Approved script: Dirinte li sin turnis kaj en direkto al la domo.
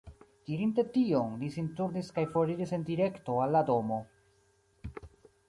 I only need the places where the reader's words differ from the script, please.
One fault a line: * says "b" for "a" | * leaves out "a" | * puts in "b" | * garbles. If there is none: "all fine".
* puts in "tion"
* puts in "foriris"